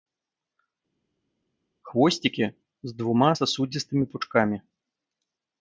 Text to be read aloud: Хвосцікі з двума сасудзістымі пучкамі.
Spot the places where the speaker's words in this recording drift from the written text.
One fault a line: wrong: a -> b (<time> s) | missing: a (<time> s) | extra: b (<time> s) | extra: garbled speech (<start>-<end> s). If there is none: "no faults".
no faults